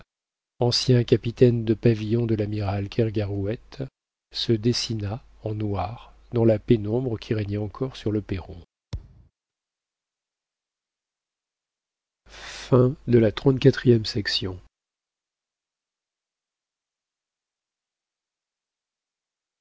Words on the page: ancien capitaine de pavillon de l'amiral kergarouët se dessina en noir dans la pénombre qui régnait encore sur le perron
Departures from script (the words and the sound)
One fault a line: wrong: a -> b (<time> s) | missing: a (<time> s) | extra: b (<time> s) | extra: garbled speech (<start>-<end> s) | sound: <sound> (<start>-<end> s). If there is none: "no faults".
sound: thud (8.9-9.3 s)